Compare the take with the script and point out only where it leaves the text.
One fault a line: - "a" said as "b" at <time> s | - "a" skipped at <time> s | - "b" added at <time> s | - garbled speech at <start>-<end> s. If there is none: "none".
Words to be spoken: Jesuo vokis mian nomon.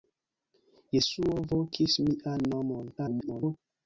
- garbled speech at 3.0-3.6 s